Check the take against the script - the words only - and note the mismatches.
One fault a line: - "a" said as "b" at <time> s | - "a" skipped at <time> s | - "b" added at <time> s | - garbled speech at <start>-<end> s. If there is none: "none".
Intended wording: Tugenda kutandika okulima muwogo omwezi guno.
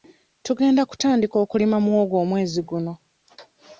none